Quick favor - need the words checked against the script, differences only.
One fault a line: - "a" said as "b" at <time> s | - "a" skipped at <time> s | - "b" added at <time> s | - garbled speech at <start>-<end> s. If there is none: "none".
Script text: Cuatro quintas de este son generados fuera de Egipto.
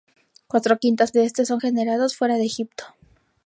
none